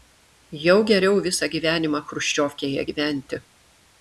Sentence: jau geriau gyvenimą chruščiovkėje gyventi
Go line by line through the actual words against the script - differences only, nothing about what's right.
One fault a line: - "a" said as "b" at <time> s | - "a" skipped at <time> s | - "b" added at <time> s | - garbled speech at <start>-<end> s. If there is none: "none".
- "visą" added at 1.3 s